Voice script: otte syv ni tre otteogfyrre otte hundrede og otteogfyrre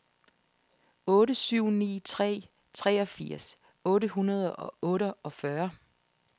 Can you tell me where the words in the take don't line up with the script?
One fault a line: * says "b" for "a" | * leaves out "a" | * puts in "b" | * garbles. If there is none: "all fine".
* says "treogfirs" for "otteogfyrre"